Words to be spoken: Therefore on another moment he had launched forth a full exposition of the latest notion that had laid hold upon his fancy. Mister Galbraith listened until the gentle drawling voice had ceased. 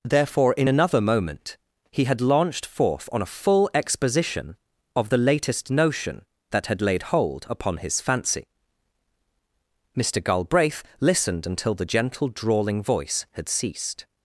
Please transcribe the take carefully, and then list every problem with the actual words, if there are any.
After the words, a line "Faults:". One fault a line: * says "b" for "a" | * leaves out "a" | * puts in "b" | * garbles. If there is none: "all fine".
Therefore in another moment he had launched forth on a full exposition of the latest notion that had laid hold upon his fancy. Mister Galbraith listened until the gentle drawling voice had ceased.
Faults:
* says "in" for "on"
* puts in "on"